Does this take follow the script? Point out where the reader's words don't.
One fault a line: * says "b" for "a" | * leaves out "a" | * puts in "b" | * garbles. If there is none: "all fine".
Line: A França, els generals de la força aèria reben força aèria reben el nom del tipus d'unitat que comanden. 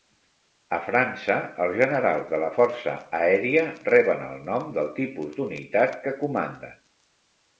* leaves out "força aèria reben"